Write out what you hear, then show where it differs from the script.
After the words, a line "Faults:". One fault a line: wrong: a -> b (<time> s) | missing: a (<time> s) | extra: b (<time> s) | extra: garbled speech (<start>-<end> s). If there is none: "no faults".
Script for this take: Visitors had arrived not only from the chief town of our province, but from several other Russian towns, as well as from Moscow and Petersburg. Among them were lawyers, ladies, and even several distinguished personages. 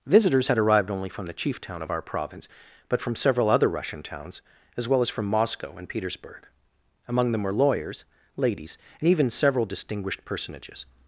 Visitors had arrived only from the chief town of our province, but from several other Russian towns, as well as from Moscow and Petersburg. Among them were lawyers, ladies, and even several distinguished personages.
Faults:
missing: not (0.9 s)